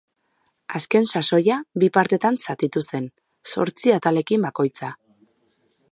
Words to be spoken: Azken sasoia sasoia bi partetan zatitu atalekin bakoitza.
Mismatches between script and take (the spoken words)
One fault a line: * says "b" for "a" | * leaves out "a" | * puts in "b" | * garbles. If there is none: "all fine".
* leaves out "sasoia"
* puts in "zen zortzi"